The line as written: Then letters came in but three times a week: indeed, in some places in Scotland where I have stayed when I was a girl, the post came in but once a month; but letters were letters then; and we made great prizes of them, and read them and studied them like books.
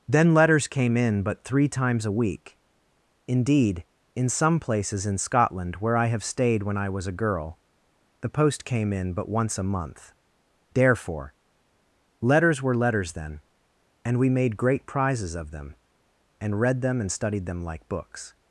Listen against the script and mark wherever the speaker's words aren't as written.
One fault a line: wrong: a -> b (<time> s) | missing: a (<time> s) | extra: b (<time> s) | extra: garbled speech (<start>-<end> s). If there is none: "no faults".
wrong: but -> therefore (10.7 s)